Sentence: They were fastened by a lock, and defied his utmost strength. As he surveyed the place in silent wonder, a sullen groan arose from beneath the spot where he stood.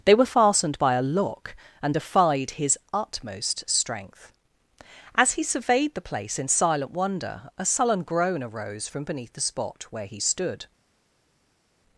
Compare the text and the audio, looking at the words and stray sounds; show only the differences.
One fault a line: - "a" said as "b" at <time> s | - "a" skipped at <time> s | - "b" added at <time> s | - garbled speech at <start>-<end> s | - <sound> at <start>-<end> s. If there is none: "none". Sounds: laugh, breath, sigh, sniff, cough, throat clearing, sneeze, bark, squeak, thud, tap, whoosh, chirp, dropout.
none